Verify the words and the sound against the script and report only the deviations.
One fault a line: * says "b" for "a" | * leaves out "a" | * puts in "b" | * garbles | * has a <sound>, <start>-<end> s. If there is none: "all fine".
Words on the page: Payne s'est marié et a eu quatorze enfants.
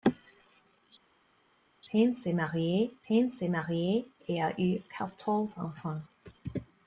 * puts in "payne s'est marié"